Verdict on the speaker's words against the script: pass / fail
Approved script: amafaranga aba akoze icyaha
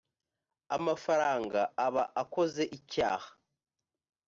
pass